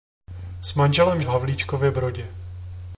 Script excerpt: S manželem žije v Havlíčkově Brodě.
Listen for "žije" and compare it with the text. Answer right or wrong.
wrong